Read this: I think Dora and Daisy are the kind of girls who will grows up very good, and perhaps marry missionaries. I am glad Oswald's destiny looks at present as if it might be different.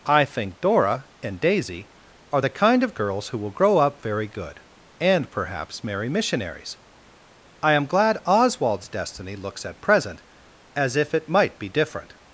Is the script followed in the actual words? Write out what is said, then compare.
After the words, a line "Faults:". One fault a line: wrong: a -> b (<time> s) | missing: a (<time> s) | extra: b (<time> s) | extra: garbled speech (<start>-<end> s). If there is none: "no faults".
I think Dora and Daisy are the kind of girls who will grow up very good, and perhaps marry missionaries. I am glad Oswald's destiny looks at present as if it might be different.
Faults:
wrong: grows -> grow (3.5 s)